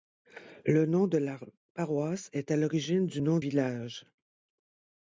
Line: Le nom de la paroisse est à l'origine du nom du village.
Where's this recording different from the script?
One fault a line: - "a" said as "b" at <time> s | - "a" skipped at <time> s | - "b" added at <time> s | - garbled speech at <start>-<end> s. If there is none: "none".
- "du" skipped at 3.4 s